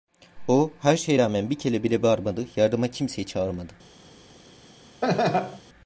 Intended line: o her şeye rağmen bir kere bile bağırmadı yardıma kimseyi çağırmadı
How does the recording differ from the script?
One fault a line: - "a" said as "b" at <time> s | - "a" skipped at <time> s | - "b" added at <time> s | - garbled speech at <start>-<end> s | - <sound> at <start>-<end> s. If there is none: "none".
- laugh at 5.0-5.6 s